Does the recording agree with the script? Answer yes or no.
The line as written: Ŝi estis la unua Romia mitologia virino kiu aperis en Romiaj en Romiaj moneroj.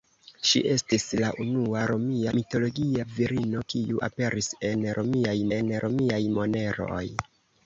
yes